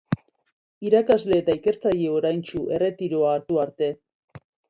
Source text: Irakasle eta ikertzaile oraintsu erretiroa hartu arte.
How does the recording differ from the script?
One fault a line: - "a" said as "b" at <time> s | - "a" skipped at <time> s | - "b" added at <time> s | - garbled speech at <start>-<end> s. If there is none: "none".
none